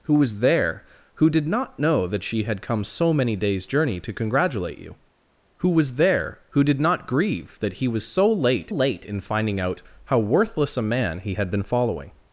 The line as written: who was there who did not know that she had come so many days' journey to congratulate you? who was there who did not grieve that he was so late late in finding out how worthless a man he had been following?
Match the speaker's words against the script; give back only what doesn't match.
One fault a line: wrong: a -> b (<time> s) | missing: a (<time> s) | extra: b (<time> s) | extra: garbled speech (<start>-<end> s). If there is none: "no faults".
no faults